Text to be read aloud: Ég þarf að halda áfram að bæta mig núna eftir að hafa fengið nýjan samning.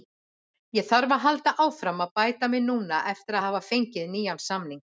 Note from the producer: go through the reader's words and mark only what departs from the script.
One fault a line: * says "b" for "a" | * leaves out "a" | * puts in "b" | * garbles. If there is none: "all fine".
all fine